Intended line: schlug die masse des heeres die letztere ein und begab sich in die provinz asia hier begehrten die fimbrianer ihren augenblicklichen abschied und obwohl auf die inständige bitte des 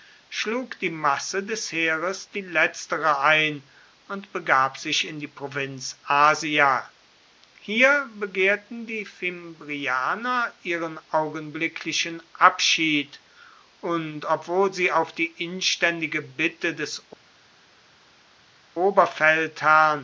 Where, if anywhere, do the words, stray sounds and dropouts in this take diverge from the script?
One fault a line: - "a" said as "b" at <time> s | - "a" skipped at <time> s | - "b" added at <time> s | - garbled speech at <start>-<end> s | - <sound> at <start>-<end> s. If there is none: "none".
- "sie" added at 14.7 s